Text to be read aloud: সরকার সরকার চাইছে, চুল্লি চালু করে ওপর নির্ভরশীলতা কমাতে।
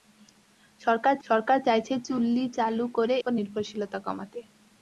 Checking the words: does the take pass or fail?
pass